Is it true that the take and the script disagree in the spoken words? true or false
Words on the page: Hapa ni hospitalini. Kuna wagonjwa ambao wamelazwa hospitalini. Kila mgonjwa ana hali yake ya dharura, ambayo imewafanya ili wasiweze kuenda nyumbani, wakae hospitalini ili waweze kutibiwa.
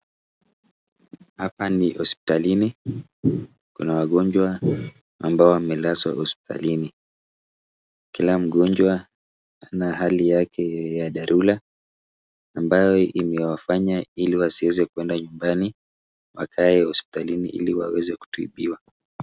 false